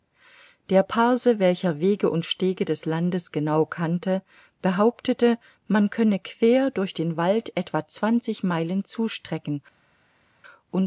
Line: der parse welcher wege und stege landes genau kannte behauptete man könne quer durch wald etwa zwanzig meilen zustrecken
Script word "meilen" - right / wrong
right